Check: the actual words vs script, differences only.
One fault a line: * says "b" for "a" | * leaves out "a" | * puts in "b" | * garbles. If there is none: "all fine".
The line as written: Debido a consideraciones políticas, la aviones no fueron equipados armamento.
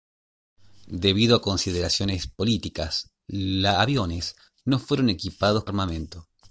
all fine